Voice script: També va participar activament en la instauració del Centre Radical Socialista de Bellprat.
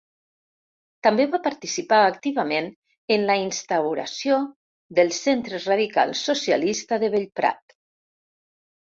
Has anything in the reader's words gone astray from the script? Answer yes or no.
no